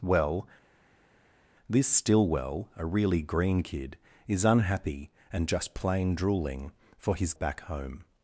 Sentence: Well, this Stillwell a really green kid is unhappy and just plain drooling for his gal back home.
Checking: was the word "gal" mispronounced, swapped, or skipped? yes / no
yes